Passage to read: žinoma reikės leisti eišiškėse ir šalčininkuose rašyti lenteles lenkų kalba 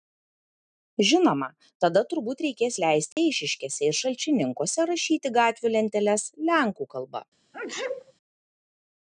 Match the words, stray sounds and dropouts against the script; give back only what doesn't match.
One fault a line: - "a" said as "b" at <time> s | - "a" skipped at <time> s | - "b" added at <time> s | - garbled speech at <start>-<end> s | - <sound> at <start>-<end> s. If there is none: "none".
- "tada turbūt" added at 1.8 s
- dropout at 3.1-3.2 s
- "gatvių" added at 5.4 s
- sneeze at 7.5-8.1 s